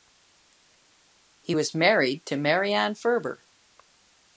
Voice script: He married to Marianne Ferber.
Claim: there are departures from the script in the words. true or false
true